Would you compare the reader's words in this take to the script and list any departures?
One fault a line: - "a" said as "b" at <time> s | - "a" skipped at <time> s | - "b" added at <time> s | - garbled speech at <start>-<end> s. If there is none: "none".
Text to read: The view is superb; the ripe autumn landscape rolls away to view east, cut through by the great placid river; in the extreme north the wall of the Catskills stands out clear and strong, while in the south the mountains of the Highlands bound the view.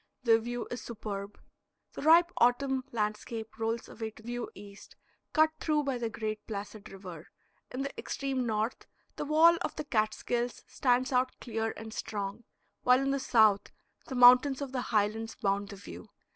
none